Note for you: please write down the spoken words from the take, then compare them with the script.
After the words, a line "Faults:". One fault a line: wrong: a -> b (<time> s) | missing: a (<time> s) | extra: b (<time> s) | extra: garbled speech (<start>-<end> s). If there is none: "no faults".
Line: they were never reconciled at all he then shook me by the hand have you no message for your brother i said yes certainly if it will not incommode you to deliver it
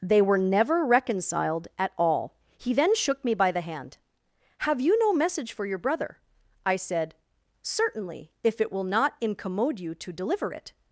they were never reconciled at all he then shook me by the hand have you no message for your brother i said certainly if it will not incommode you to deliver it
Faults:
missing: yes (7.2 s)